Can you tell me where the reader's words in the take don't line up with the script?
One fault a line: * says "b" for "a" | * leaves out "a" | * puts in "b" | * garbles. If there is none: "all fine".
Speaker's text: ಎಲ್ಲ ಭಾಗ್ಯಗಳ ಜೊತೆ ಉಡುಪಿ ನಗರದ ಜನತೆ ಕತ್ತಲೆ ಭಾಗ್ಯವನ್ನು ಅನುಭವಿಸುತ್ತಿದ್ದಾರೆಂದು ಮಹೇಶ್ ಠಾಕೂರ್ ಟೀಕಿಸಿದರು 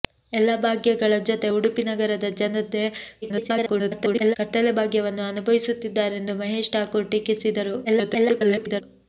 * garbles
* garbles